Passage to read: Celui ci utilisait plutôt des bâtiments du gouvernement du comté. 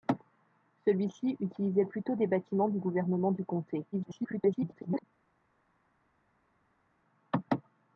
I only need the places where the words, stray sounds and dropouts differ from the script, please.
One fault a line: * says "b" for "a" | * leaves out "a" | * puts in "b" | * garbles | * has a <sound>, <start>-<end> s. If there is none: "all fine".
* garbles